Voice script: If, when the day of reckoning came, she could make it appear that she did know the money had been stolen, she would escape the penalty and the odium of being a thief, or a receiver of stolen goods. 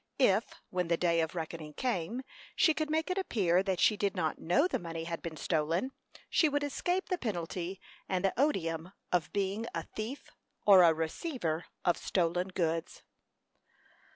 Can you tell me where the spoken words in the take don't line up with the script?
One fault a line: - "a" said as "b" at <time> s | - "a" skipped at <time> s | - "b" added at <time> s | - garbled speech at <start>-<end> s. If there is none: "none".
- "not" added at 4.2 s